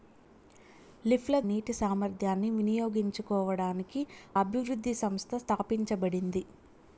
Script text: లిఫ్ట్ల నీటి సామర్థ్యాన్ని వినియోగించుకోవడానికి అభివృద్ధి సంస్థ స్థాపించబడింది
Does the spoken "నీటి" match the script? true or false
true